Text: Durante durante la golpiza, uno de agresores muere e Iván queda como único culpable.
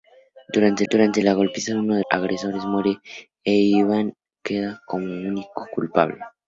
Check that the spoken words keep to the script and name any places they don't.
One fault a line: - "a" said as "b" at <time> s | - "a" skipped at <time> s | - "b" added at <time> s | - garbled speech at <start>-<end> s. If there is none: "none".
none